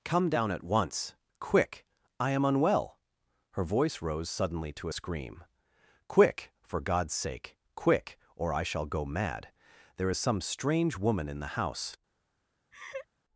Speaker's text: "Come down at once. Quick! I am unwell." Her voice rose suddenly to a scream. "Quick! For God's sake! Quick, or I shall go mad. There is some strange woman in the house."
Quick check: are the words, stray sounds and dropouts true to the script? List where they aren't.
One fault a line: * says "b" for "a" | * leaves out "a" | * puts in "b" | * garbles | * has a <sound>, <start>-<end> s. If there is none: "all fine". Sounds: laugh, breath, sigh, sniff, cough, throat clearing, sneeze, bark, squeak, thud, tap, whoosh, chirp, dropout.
* has a laugh, 12.7-13.1 s